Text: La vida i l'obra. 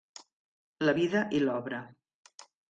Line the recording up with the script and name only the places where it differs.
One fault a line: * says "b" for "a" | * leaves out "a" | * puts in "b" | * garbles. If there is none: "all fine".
all fine